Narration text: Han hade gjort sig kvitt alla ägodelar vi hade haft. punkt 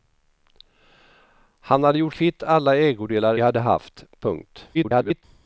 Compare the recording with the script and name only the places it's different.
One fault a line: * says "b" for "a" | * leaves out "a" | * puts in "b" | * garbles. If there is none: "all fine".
* leaves out "sig"
* leaves out "vi"
* garbles